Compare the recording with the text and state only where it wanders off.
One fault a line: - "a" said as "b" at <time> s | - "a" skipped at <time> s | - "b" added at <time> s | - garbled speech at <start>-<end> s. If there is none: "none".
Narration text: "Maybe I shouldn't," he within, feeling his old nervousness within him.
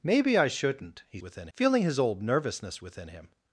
none